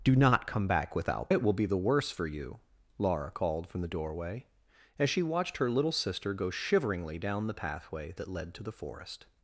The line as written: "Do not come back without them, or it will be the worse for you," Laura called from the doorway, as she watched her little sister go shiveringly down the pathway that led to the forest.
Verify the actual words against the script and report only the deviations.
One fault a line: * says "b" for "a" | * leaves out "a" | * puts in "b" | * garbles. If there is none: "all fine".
* leaves out "them or"